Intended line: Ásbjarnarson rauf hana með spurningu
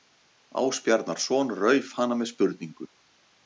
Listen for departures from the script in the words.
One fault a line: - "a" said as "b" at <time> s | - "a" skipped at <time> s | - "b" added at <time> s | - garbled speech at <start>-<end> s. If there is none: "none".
none